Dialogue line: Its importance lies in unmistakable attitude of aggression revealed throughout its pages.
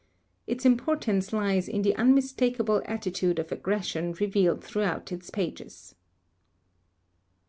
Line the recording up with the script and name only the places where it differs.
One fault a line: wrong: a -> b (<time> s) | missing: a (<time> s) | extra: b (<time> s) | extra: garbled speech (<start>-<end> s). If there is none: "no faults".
extra: the (1.8 s)